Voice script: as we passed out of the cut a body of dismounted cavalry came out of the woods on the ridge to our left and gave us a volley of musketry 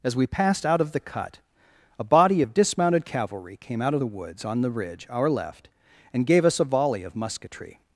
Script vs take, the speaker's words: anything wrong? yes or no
yes